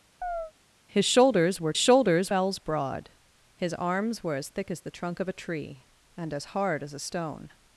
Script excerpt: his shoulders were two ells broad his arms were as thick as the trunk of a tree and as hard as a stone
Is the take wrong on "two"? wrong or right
wrong